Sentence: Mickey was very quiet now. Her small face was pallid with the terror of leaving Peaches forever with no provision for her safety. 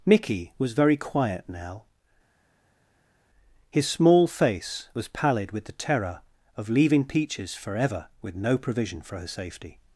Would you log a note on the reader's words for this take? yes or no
yes